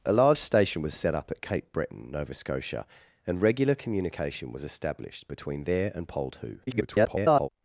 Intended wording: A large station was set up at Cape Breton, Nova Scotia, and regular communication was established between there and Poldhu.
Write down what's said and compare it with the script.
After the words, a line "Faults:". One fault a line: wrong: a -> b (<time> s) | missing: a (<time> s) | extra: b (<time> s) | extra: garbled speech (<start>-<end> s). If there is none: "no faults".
A large station was set up at Cape Breton, Nova Scotia, and regular communication was established between there and Poldhu. [garbled]
Faults:
extra: garbled speech (6.7-7.5 s)